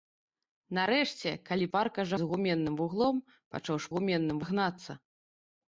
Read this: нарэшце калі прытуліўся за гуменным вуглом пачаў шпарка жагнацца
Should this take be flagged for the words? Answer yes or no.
yes